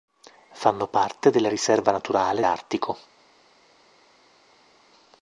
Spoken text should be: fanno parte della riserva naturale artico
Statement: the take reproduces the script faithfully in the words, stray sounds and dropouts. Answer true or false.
true